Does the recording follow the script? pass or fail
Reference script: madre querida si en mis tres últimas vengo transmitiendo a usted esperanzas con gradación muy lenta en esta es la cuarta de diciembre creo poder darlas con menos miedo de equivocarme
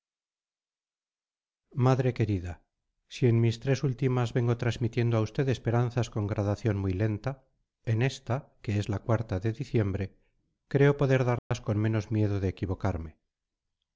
fail